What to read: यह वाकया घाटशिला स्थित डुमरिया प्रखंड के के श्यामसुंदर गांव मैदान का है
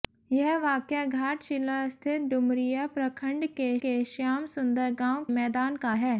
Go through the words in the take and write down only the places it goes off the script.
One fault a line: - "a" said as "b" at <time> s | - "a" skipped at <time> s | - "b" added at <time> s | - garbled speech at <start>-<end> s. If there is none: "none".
none